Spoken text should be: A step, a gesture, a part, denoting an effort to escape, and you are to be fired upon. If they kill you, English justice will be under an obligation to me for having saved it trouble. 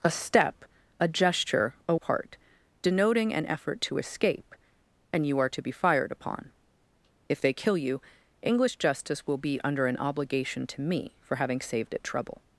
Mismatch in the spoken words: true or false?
false